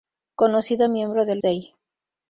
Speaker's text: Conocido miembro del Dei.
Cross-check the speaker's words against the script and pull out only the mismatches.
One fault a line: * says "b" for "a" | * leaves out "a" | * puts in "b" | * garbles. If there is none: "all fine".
all fine